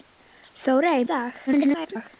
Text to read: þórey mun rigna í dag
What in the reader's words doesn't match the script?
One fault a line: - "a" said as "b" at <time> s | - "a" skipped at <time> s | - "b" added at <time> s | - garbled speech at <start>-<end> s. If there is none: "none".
- "mun rigna" skipped at 1.1 s
- garbled speech at 1.5-2.1 s